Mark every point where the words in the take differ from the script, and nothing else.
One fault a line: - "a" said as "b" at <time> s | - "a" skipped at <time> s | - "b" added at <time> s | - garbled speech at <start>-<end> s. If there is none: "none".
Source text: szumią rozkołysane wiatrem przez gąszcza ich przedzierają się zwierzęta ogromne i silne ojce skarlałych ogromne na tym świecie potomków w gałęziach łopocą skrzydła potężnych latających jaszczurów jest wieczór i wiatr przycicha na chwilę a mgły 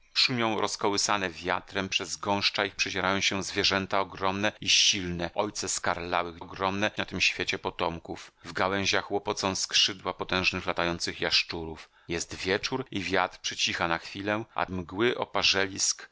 none